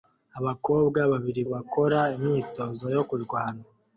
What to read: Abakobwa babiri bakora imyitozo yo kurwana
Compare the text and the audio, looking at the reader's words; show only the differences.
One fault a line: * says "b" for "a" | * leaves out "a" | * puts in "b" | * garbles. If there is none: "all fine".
all fine